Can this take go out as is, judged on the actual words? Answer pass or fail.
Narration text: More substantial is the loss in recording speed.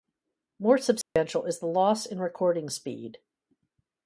pass